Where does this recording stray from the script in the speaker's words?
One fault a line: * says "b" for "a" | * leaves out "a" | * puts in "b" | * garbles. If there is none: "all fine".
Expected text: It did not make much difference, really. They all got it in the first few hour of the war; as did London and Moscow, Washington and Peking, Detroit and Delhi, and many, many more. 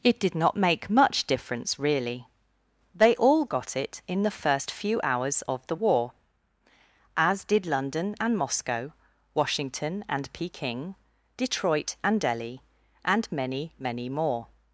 * says "hours" for "hour"